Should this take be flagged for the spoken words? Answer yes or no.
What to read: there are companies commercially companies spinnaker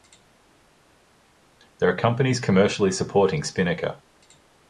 yes